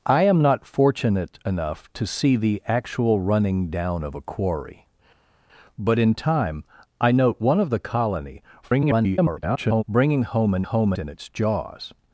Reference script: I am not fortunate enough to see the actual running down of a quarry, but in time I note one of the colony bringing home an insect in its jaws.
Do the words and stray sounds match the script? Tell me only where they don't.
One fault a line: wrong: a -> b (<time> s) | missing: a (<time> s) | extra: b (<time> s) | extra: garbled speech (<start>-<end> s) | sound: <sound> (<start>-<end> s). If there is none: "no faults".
extra: garbled speech (8.6-9.8 s)
wrong: insect -> home (10.6 s)